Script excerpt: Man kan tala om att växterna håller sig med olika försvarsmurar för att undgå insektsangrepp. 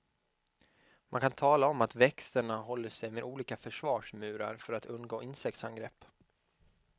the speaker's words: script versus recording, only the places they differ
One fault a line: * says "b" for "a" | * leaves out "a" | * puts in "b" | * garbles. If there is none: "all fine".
all fine